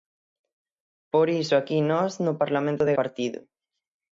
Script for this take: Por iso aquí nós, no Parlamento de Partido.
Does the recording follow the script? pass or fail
pass